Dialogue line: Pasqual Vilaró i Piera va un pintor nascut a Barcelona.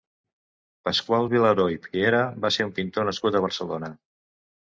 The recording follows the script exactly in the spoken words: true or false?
false